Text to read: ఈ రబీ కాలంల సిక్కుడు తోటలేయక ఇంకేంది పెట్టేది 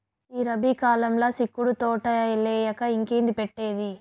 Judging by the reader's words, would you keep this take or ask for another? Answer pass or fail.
pass